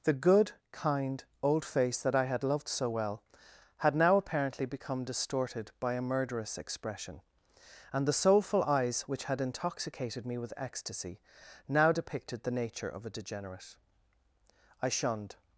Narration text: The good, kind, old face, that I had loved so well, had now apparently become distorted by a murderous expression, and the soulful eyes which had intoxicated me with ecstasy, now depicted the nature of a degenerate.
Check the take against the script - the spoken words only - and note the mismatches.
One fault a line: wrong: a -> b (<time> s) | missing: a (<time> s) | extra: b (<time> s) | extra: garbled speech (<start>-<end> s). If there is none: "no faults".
extra: I shunned (14.8 s)